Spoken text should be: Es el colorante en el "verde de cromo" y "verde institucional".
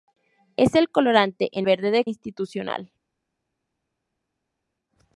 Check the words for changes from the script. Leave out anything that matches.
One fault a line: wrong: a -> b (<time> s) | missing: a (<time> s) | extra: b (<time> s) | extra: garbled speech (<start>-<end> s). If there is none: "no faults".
missing: el (1.7 s)
missing: cromo y verde (2.1 s)